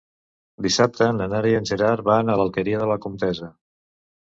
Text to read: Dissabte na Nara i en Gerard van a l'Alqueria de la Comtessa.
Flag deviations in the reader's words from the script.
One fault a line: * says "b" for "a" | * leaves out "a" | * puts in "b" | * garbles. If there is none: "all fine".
all fine